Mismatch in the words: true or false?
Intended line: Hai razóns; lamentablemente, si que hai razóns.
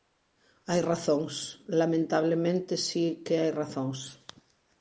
false